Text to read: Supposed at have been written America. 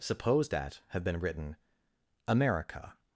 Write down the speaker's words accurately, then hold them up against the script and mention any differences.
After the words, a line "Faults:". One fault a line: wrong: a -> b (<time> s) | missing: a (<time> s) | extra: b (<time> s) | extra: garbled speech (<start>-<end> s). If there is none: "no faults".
Supposed at have been written America.
Faults:
no faults